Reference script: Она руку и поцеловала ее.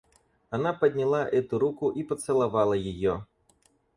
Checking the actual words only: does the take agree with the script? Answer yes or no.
no